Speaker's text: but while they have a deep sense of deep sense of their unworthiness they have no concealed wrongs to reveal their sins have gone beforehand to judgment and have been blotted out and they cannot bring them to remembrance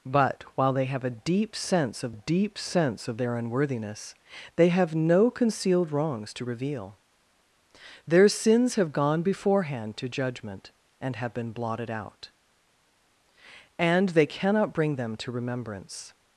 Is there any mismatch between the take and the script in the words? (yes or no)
no